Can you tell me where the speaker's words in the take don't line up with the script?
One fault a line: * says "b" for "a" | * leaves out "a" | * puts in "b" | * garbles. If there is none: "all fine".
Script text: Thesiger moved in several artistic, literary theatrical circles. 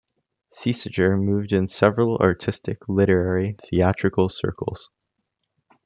all fine